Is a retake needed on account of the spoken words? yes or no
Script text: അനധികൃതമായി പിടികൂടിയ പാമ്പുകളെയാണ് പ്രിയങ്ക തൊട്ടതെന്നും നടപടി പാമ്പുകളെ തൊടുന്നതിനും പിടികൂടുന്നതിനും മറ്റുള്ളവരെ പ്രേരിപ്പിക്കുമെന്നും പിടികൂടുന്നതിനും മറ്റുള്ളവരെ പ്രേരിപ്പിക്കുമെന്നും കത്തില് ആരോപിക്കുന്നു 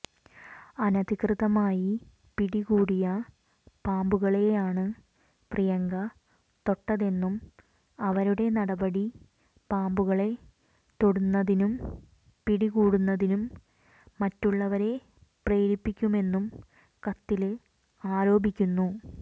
yes